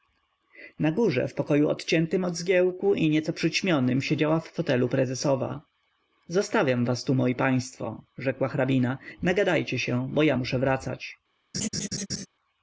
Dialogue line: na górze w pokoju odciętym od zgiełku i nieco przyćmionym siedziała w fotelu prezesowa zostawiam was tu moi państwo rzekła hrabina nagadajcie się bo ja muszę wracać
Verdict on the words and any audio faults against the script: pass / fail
fail